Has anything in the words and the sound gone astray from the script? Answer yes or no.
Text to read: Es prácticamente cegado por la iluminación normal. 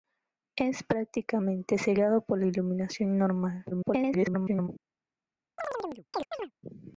yes